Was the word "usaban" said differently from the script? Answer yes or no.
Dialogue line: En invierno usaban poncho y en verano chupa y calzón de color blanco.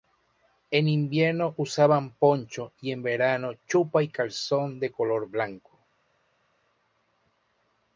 no